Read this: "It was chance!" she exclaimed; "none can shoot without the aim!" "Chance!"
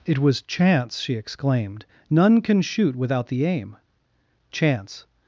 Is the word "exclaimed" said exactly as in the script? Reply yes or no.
yes